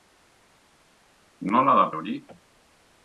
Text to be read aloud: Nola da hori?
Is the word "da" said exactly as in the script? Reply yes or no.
yes